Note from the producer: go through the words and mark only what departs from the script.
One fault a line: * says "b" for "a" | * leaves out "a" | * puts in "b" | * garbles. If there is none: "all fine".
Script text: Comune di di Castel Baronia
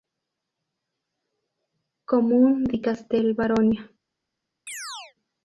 * leaves out "di"